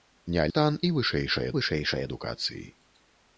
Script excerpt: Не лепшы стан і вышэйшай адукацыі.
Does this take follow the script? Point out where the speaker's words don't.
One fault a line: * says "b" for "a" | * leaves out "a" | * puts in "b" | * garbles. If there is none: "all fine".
* leaves out "лепшы"
* puts in "вышэйшай"